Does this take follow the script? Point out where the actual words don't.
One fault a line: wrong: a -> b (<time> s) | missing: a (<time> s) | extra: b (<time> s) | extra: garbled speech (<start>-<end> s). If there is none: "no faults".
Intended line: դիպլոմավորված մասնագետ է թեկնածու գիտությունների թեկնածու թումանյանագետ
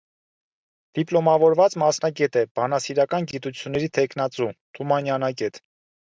wrong: թեկնածու -> բանասիրական (2.6 s)